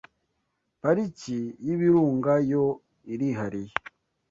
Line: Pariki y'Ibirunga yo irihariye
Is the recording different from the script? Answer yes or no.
no